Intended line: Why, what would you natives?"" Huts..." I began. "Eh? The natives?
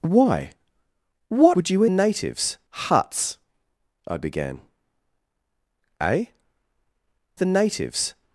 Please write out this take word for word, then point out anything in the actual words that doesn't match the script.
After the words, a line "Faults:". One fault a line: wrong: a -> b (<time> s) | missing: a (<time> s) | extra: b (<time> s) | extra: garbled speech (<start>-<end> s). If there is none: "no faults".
Why, what would you natives?"" Huts..." I began. "Eh? The natives?
Faults:
no faults